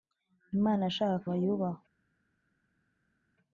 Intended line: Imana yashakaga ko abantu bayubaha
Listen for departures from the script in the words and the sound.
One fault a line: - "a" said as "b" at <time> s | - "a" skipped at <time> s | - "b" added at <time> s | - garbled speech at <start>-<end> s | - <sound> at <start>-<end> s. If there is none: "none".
- "abantu" skipped at 1.3 s